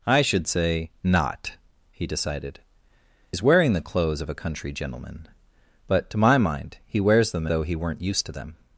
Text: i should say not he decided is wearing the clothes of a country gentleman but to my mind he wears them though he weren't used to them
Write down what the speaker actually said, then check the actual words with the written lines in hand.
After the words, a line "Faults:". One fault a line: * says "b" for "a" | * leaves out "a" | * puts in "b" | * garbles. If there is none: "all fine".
i should say not he decided is wearing the clothes of a country gentleman but to my mind he wears them though he weren't used to them
Faults:
all fine